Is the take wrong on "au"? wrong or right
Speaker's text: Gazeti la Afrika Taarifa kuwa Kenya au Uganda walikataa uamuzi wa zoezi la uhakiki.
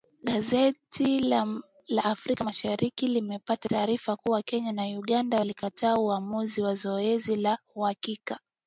wrong